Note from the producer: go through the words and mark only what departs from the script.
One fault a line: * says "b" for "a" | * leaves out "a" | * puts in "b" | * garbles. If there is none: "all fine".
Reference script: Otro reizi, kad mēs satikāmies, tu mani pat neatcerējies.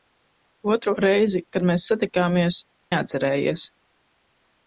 * leaves out "tu mani pat"